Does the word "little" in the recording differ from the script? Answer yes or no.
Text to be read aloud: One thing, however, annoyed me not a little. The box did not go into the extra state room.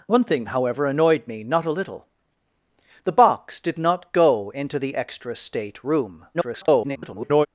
no